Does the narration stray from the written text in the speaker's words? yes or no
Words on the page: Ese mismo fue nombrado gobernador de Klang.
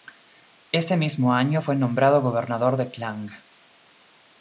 yes